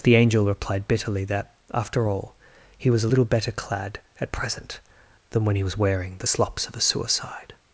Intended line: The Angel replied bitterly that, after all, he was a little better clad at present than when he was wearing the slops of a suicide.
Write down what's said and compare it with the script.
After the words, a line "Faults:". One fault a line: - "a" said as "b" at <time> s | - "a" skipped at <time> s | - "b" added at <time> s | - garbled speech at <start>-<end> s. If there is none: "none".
The Angel replied bitterly that, after all, he was a little better clad at present than when he was wearing the slops of a suicide.
Faults:
none